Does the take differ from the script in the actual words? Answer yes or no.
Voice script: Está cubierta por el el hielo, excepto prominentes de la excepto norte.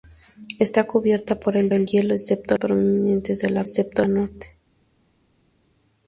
no